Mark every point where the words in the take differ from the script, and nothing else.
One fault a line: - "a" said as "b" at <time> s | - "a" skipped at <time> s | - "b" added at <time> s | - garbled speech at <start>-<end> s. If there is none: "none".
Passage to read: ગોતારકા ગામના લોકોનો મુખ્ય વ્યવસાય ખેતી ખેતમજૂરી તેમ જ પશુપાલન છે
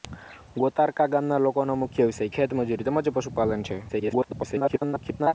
- "ખેતી" skipped at 2.4 s
- garbled speech at 3.9-5.3 s